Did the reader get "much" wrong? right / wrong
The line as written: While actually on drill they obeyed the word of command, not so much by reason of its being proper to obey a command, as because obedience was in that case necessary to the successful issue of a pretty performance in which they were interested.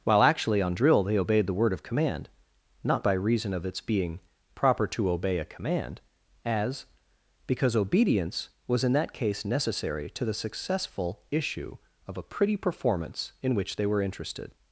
wrong